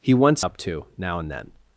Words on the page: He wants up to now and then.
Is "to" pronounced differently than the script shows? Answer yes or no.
no